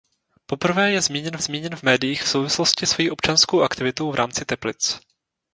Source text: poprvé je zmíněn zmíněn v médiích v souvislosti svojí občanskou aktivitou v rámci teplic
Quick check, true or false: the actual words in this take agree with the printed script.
true